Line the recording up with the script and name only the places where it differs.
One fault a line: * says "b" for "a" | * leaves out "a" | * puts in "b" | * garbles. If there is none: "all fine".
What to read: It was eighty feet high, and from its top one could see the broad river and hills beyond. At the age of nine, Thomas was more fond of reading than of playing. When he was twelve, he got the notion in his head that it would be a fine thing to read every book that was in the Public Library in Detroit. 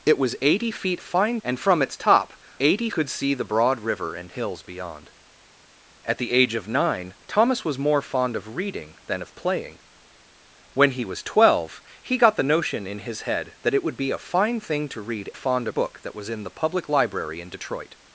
* says "fine" for "high"
* says "eighty" for "one"
* says "fond" for "every"